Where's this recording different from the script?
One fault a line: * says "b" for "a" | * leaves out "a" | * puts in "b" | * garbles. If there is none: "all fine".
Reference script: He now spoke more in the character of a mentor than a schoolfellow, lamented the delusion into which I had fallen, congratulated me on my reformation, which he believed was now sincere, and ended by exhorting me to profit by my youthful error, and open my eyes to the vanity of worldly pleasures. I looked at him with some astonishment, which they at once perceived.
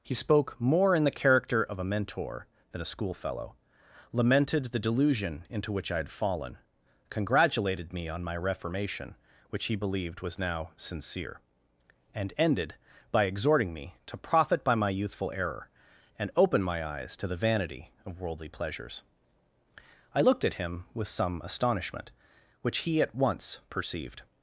* leaves out "now"
* says "he" for "they"